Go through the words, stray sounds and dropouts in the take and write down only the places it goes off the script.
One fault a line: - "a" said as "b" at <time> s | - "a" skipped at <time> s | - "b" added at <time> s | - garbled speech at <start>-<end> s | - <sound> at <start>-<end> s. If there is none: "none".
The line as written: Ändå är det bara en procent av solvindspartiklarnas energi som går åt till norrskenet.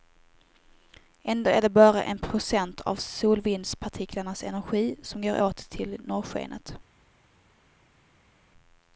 none